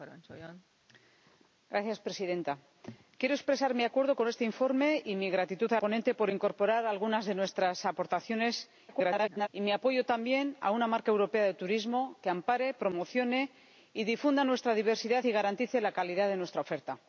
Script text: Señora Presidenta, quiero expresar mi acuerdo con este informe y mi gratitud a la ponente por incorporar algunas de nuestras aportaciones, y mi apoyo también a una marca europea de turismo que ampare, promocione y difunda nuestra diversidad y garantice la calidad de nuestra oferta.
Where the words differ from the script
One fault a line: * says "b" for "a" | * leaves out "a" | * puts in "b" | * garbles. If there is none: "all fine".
* leaves out "la"
* garbles